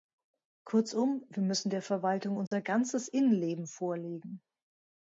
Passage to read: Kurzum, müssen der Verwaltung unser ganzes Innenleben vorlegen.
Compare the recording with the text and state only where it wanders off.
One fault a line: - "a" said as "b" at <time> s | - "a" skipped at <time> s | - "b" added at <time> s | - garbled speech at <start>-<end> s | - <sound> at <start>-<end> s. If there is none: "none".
- "wir" added at 1.3 s
- dropout at 2.5-2.5 s